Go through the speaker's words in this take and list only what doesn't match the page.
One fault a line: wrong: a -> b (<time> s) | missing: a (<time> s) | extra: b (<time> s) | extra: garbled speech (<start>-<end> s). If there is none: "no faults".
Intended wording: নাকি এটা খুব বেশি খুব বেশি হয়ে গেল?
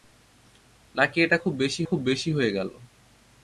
no faults